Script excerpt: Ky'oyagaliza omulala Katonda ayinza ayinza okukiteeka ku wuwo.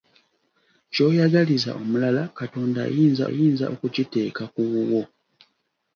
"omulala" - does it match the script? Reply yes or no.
yes